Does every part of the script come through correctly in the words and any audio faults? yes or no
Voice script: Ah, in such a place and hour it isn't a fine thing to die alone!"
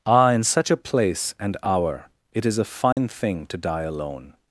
no